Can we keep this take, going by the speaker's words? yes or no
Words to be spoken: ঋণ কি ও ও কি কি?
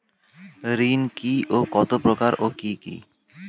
no